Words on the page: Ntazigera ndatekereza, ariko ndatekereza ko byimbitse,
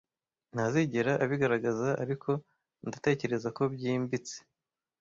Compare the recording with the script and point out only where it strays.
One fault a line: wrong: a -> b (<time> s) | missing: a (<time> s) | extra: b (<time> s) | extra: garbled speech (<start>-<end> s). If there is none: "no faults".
wrong: ndatekereza -> abigaragaza (1.2 s)